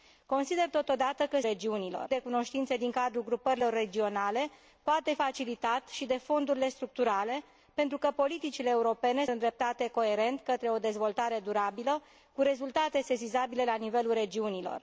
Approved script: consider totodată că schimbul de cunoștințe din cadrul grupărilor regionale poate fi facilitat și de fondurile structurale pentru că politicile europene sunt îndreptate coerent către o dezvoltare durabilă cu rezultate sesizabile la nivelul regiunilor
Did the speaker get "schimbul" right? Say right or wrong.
wrong